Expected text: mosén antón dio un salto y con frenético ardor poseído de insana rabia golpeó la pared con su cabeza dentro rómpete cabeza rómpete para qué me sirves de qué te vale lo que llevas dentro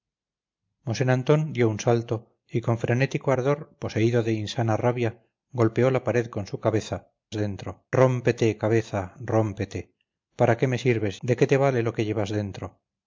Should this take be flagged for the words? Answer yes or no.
no